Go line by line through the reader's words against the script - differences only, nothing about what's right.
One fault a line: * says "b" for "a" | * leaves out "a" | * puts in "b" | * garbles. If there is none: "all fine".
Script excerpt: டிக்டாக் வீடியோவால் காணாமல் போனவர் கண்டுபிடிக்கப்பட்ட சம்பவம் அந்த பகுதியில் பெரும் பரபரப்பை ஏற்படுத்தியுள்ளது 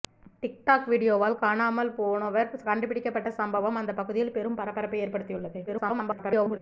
* garbles